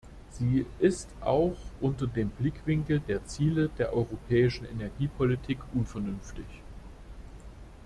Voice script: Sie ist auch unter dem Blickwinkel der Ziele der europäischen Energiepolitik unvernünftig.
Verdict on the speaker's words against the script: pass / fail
pass